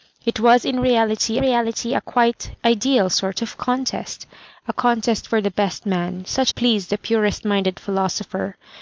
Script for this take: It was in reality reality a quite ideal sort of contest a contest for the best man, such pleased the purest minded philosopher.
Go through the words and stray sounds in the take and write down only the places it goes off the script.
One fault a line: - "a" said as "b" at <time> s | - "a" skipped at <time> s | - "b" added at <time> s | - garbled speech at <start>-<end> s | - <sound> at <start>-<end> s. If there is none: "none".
none